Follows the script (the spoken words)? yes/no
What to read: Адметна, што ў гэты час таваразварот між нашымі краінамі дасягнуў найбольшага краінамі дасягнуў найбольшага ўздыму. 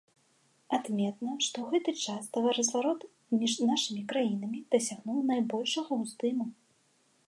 no